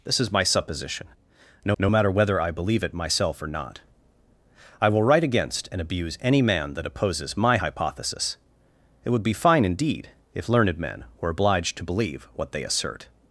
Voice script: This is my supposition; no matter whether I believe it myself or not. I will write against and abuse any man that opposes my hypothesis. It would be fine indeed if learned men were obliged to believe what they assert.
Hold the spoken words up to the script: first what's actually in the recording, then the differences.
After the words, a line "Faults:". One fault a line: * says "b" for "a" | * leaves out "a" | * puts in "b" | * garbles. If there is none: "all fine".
This is my supposition; no no matter whether I believe it myself or not. I will write against and abuse any man that opposes my hypothesis. It would be fine indeed if learned men were obliged to believe what they assert.
Faults:
* puts in "no"